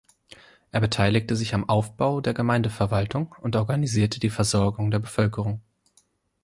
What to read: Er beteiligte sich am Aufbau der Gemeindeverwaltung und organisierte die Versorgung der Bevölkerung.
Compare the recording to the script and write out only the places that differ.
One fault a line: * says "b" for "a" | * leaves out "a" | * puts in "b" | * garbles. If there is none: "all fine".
all fine